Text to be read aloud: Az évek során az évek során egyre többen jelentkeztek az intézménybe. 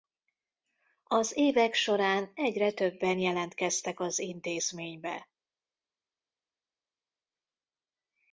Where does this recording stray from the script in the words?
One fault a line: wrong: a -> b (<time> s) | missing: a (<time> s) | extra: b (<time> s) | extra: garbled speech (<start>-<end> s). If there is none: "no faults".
missing: az évek során (2.3 s)